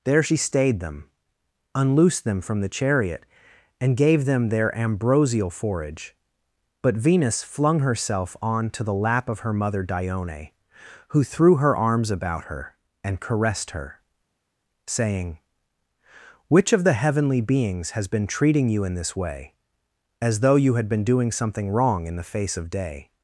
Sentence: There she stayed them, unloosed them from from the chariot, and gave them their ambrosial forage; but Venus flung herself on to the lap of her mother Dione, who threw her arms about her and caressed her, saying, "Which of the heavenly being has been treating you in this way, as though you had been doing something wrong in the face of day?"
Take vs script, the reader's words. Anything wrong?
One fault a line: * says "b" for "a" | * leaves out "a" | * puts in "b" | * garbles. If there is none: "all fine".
* leaves out "from"
* says "beings" for "being"